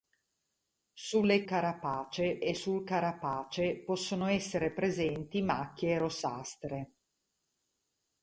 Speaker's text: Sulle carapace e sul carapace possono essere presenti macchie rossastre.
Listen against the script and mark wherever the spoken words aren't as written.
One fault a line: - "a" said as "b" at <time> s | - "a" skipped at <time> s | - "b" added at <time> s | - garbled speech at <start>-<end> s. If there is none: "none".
none